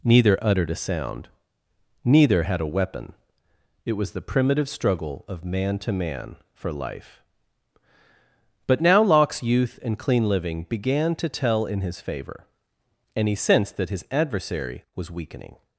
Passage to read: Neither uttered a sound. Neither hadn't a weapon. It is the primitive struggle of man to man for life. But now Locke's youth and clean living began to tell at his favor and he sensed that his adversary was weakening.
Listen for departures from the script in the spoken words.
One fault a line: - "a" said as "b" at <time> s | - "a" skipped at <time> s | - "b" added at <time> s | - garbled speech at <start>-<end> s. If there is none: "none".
- "hadn't" said as "had" at 2.4 s
- "is" said as "was" at 3.9 s
- "at" said as "in" at 11.7 s